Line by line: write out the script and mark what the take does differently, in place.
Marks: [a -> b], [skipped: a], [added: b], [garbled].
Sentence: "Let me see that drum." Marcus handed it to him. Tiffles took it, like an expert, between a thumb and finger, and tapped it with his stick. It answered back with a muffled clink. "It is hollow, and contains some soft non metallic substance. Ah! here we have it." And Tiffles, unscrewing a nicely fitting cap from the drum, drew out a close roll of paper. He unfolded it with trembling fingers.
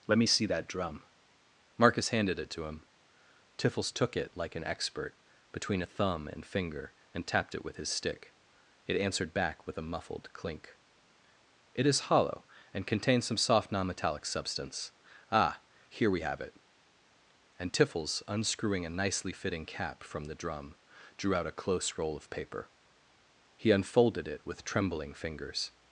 "Let me see that drum." Marcus handed it to him. Tiffles took it, like an expert, between a thumb and finger, and tapped it with his stick. It answered back with a muffled clink. "It is hollow, and contains some soft non metallic substance. Ah! here we have it." And Tiffles, unscrewing a nicely fitting cap from the drum, drew out a close roll of paper. He unfolded it with trembling fingers.